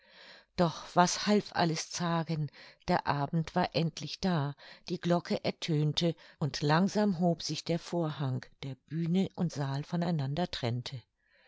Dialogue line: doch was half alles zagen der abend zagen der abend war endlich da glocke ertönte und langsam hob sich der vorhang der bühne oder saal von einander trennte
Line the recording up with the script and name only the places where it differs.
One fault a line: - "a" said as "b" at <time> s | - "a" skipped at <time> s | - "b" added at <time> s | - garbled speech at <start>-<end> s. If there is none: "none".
- "zagen der abend" skipped at 3.5 s
- "die" added at 4.9 s
- "oder" said as "und" at 9.3 s